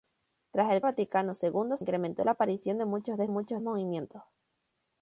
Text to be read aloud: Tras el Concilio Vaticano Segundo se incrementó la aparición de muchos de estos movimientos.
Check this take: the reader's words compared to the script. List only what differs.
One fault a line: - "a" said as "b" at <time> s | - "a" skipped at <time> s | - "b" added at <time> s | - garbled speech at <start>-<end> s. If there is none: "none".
- "Concilio" skipped at 0.8 s
- "se" skipped at 1.8 s
- "estos" said as "muchos" at 3.3 s